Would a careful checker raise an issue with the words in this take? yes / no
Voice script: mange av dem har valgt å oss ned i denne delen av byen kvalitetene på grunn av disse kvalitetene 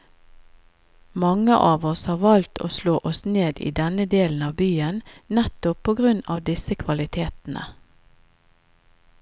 yes